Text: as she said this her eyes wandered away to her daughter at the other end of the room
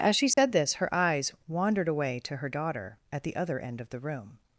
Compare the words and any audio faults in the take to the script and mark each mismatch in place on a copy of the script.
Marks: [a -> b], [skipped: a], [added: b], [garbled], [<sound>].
as she said [dropout] this her eyes wandered away to her daughter at the other end of the room